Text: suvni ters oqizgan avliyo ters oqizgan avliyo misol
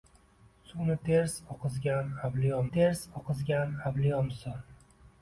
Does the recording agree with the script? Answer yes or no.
yes